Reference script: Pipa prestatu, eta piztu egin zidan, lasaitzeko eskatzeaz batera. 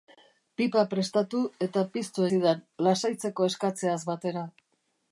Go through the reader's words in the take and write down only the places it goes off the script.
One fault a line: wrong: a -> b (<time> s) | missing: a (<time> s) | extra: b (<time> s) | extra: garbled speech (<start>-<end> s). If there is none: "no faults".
missing: egin (2.2 s)